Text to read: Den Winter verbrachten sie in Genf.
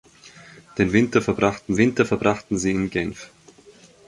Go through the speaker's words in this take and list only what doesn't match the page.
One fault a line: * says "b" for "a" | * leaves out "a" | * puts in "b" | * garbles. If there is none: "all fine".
* puts in "Winter verbrachten"